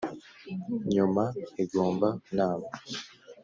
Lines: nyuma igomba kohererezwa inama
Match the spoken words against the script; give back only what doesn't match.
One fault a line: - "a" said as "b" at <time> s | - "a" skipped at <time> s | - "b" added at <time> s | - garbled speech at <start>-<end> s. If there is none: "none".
- "kohererezwa" skipped at 2.1 s